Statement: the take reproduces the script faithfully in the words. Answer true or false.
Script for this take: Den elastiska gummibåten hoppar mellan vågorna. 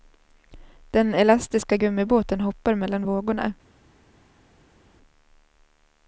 true